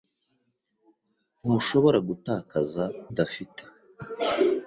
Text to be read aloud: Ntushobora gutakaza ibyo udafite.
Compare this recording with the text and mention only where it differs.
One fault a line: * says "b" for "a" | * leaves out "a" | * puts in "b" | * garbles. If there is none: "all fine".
* leaves out "ibyo"